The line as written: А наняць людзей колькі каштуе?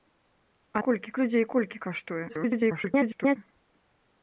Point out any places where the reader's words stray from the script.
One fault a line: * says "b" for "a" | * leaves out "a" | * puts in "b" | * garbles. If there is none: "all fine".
* says "колькі" for "наняць"
* garbles